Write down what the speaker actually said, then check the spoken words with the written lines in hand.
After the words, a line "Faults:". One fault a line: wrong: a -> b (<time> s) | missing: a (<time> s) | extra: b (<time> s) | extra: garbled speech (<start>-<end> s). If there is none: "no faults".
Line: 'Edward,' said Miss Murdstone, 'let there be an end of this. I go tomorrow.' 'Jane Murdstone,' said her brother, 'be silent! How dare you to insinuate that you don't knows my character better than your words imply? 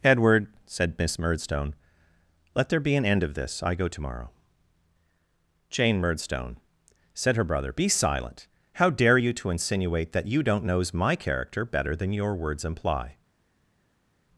'Edward,' said Miss Murdstone, 'let there be an end of this. I go tomorrow.' 'Jane Murdstone,' said her brother, 'be silent! How dare you to insinuate that you don't knows my character better than your words imply?
Faults:
no faults